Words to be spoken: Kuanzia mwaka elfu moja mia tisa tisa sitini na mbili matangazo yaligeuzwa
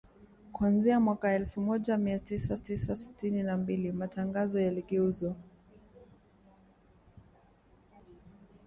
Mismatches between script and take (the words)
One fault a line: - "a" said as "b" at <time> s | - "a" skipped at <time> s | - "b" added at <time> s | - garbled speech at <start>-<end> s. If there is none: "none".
none